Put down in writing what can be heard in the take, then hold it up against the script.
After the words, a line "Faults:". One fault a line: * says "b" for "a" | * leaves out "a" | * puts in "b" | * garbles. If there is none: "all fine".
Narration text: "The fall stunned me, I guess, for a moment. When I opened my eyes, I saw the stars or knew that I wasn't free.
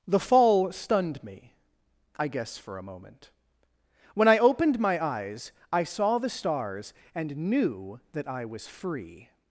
"The fall stunned me, I guess, for a moment. When I opened my eyes, I saw the stars and knew that I was free.
Faults:
* says "and" for "or"
* says "was" for "wasn't"